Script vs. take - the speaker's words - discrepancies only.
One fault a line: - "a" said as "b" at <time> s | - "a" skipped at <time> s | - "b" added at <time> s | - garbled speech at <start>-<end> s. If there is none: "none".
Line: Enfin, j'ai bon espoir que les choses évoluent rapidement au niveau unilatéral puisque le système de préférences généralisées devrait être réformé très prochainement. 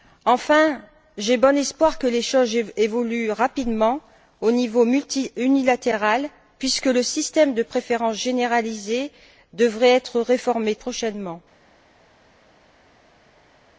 - "très" skipped at 10.8 s